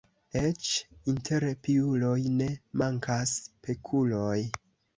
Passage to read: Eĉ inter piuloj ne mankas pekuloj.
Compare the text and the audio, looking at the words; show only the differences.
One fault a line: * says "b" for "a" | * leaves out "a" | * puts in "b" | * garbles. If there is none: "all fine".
all fine